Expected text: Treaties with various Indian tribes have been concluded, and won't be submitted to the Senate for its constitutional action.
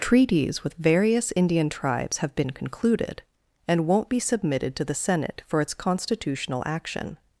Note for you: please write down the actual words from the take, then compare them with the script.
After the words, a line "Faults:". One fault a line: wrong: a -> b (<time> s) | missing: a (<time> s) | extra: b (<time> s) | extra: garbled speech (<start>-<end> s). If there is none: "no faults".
Treaties with various Indian tribes have been concluded, and won't be submitted to the Senate for its constitutional action.
Faults:
no faults